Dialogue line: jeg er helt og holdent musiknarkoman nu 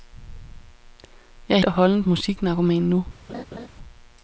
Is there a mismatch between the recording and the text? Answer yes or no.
yes